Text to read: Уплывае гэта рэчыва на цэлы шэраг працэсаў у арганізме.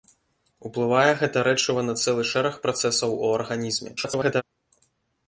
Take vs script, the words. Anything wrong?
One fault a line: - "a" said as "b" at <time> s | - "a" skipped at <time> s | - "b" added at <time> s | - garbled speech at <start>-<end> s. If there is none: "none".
- garbled speech at 4.0-4.4 s